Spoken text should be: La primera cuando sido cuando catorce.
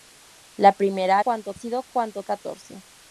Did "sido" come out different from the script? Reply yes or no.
no